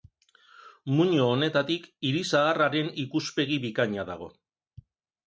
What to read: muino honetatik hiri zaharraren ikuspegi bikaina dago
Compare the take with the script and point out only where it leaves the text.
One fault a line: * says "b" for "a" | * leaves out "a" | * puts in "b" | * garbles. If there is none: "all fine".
all fine